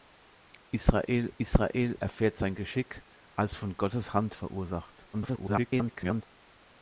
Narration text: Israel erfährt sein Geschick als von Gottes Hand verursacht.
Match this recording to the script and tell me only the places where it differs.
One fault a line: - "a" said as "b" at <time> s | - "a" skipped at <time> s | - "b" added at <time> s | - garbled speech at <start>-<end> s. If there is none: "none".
- "israel" added at 1.4 s
- garbled speech at 5.1-6.2 s